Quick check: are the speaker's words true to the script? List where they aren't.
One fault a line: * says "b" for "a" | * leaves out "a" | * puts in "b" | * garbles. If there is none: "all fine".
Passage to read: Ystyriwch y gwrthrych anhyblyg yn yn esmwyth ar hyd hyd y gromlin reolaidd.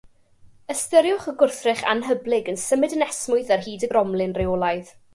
* puts in "symud"
* leaves out "hyd"